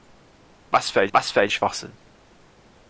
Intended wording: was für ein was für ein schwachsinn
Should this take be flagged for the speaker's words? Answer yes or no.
no